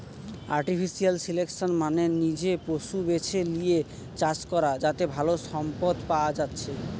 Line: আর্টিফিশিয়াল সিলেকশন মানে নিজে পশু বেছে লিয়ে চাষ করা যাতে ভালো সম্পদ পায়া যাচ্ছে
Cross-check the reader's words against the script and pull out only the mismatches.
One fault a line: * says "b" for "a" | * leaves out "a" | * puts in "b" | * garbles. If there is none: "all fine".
all fine